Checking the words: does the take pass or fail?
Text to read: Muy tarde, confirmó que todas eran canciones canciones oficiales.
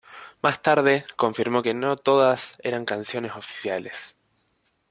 fail